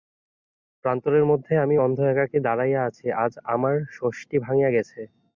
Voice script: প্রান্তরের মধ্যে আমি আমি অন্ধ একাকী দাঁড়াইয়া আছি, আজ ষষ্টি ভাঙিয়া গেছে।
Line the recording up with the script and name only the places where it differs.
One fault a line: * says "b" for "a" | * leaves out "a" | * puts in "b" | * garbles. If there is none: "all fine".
* leaves out "আমি"
* puts in "আমার"